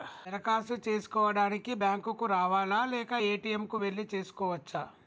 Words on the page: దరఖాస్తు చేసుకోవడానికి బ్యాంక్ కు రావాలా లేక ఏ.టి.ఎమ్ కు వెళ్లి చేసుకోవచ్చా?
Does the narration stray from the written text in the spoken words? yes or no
no